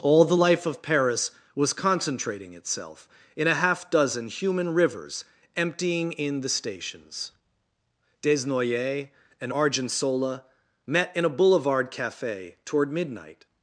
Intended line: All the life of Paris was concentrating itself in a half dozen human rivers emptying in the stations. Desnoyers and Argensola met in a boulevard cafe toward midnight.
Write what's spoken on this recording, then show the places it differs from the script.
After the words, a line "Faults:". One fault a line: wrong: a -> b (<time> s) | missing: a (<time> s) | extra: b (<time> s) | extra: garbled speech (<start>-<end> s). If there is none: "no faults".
All the life of Paris was concentrating itself in a half dozen human rivers emptying in the stations. Desnoyers and Argensola met in a boulevard cafe toward midnight.
Faults:
no faults